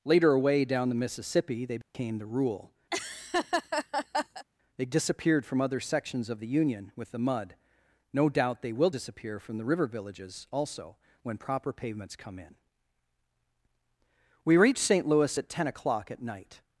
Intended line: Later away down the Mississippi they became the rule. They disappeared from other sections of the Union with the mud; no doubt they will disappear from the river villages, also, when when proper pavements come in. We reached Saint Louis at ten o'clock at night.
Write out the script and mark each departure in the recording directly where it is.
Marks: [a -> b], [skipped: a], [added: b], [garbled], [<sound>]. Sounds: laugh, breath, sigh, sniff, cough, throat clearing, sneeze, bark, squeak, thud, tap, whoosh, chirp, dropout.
Later away down the Mississippi they became [dropout] the rule. [laugh] They disappeared from other sections of the Union with the mud; no doubt they will disappear from the river villages, also, when [skipped: when] proper pavements come in. We reached Saint Louis at ten o'clock at night.